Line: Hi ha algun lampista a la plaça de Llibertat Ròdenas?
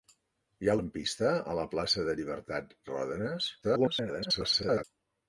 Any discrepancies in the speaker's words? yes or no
yes